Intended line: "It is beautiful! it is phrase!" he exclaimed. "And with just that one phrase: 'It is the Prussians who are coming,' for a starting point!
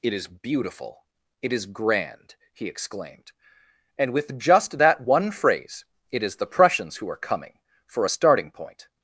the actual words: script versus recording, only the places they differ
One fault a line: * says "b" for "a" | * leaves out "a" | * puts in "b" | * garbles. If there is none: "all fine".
* says "grand" for "phrase"